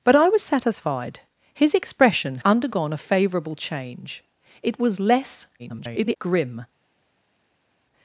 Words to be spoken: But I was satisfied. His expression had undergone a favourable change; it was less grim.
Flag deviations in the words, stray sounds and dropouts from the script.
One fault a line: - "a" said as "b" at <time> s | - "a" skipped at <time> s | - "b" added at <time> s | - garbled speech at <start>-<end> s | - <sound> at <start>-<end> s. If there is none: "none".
- "had" skipped at 2.4 s
- garbled speech at 5.6-6.2 s